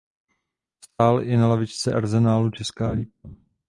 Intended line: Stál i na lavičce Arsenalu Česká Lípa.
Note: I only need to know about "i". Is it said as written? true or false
true